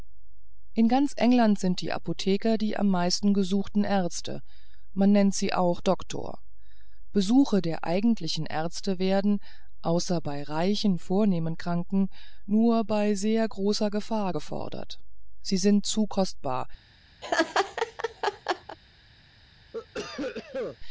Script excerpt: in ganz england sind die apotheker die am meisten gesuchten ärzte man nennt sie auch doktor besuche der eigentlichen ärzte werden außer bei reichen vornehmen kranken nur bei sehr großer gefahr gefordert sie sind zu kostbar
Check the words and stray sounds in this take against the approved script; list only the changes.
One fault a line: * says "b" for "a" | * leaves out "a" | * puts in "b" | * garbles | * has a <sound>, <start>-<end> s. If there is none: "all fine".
* has a laugh, 17.2-18.8 s
* has a cough, 19.7-20.8 s